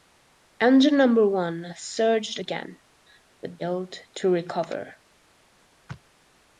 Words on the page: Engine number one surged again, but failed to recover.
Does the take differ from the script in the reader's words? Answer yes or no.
no